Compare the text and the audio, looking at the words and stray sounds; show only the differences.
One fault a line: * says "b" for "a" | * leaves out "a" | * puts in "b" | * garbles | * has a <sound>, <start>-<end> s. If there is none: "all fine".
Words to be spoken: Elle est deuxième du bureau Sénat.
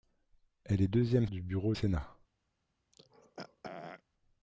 * has a throat clearing, 2.9-4.0 s